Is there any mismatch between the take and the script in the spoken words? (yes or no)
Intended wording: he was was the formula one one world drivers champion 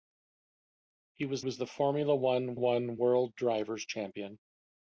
no